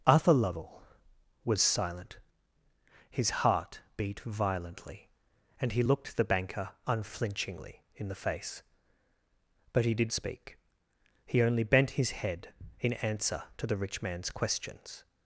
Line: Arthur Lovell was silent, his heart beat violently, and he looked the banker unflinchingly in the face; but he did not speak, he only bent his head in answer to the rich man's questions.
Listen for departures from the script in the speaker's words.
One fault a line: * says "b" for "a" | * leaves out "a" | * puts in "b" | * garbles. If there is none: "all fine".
* leaves out "not"